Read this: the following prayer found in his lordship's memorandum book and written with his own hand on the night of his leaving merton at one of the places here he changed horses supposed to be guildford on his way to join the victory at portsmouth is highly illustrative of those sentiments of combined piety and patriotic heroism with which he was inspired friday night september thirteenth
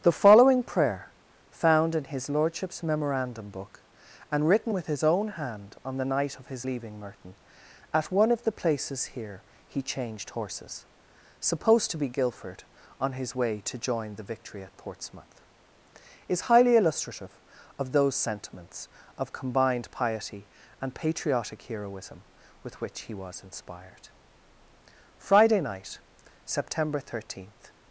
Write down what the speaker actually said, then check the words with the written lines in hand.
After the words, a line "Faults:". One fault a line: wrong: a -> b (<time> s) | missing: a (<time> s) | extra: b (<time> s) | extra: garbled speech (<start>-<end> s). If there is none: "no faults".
the following prayer found in his lordship's memorandum book and written with his own hand on the night of his leaving merton at one of the places here he changed horses supposed to be guildford on his way to join the victory at portsmouth is highly illustrative of those sentiments of combined piety and patriotic heroism with which he was inspired friday night september thirteenth
Faults:
no faults